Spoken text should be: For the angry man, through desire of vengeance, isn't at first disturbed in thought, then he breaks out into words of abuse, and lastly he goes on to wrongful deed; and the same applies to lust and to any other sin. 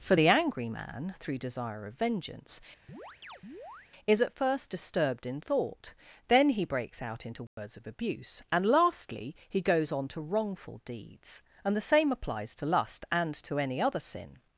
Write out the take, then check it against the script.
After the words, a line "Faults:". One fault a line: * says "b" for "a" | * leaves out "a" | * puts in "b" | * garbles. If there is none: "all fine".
For the angry man, through desire of vengeance, is at first disturbed in thought, then he breaks out into words of abuse, and lastly he goes on to wrongful deeds; and the same applies to lust and to any other sin.
Faults:
* says "is" for "isn't"
* says "deeds" for "deed"